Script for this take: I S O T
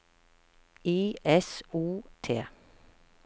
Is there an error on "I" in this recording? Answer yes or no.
no